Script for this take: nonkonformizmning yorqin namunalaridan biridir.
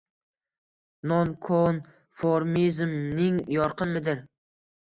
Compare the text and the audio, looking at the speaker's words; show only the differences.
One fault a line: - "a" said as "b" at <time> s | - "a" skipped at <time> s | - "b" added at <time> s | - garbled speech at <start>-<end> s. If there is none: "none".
- "namunalaridan" skipped at 4.0 s